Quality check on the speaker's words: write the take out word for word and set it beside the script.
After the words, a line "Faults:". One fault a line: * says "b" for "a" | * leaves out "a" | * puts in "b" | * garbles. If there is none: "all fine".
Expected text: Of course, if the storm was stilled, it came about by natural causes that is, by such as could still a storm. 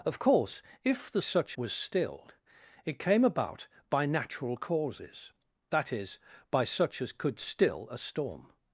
Of course, if the such was stilled, it came about by natural causes that is, by such as could still a storm.
Faults:
* says "such" for "storm"